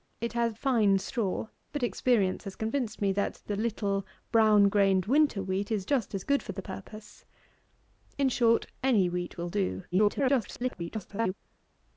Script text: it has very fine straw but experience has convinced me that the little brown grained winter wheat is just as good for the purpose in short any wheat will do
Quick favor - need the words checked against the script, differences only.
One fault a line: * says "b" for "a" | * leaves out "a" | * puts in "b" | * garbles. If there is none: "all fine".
* leaves out "very"
* garbles